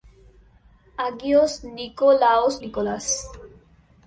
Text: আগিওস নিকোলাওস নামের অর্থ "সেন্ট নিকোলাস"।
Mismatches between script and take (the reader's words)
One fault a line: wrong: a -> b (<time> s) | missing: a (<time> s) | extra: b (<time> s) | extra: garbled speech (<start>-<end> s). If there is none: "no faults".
missing: নামের অর্থ সেন্ট (2.5 s)